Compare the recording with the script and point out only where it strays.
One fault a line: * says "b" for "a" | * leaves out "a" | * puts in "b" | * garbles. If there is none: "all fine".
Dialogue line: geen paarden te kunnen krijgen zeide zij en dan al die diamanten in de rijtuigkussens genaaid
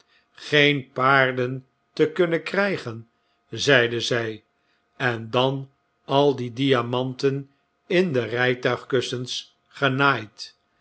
all fine